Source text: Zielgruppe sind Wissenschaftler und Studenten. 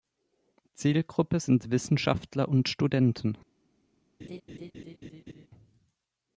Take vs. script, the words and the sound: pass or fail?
fail